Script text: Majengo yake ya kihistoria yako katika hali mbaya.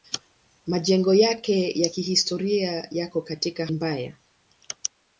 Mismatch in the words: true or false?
true